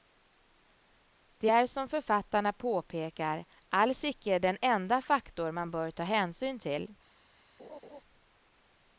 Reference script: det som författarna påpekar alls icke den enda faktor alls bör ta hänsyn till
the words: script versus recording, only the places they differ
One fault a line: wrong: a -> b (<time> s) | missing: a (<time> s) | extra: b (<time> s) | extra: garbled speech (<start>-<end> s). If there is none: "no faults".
extra: är (1.5 s)
wrong: alls -> man (5.5 s)